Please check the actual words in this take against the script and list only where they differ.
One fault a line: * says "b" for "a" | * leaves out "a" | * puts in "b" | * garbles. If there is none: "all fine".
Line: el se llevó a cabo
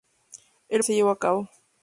all fine